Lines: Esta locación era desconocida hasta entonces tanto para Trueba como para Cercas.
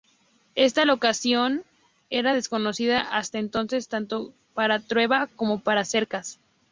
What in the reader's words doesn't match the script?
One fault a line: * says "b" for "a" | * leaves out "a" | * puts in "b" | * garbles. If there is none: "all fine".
all fine